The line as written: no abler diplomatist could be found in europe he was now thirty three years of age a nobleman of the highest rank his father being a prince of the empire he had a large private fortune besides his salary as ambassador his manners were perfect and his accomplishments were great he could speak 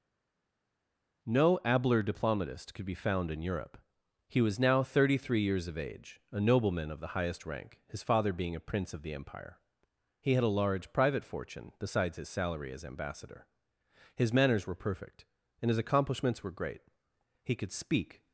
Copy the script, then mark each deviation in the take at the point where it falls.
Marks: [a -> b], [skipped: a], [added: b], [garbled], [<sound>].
no abler diplomatist could be found in europe he was now thirty three years of age a nobleman of the highest rank his father being a prince of the empire he had a large private fortune besides his salary as ambassador his manners were perfect and his accomplishments were great he could speak